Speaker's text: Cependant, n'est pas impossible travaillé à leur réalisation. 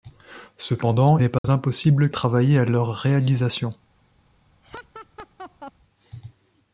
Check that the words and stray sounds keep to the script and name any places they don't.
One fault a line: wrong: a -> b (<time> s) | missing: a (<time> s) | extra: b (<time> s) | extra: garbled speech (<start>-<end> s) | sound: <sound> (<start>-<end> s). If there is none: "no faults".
sound: dropout (1.4-1.4 s)
sound: laugh (4.6-5.7 s)